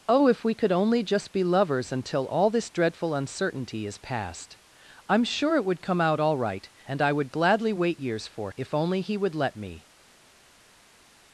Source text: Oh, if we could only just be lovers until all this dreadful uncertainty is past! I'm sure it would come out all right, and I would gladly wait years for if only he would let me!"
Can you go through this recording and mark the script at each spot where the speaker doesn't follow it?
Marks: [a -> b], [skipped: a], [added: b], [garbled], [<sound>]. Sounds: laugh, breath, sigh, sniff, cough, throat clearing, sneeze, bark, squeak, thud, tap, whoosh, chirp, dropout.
Oh, if we could only just be lovers until all this dreadful uncertainty is past! I'm sure it would come out all right, and I would gladly wait years for if only he would let me!"